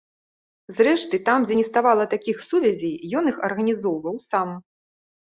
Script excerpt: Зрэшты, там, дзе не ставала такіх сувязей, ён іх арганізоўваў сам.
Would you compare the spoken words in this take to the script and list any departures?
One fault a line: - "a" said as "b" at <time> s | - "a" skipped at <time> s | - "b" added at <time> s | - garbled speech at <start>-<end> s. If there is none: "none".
none